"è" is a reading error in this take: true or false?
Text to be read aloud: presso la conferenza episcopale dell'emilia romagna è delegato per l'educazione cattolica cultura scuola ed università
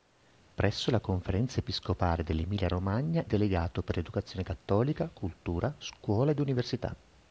true